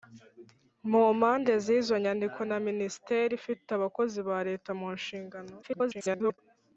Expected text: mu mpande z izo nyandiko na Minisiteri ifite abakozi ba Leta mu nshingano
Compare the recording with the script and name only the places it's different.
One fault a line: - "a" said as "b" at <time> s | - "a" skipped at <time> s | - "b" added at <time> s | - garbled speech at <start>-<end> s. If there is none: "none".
- garbled speech at 5.6-6.4 s